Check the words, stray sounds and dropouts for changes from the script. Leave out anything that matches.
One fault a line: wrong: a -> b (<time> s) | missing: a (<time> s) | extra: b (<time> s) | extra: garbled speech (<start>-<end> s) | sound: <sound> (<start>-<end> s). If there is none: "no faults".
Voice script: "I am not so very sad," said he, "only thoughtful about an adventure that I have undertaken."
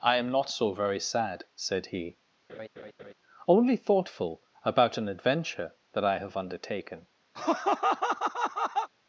sound: laugh (2.5-3.1 s)
sound: laugh (7.3-8.9 s)